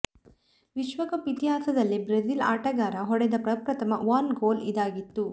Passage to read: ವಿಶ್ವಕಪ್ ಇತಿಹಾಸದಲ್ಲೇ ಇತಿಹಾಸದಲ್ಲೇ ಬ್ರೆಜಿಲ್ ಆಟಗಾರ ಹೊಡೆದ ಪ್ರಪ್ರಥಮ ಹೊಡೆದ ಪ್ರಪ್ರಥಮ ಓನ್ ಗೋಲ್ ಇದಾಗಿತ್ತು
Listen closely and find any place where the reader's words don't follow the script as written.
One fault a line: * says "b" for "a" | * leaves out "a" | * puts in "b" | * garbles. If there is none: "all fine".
* leaves out "ಇತಿಹಾಸದಲ್ಲೇ"
* leaves out "ಹೊಡೆದ ಪ್ರಪ್ರಥಮ"